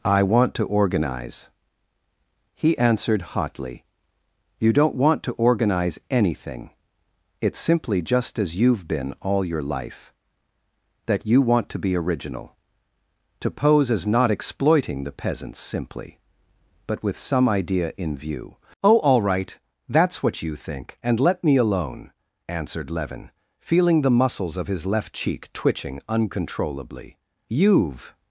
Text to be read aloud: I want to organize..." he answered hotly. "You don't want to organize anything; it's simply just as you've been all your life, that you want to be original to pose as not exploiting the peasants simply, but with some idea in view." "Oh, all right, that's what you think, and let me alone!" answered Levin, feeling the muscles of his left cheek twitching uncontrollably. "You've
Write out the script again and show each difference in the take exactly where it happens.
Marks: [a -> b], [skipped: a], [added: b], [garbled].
I want to organize..." he answered hotly. "You don't want to organize anything; it's simply just as you've been all your life, that you want to be original to pose as not exploiting the peasants simply, but with some idea in view." "Oh, all right, that's what you think, and let me alone!" answered Levin, feeling the muscles of his left cheek twitching uncontrollably. "You've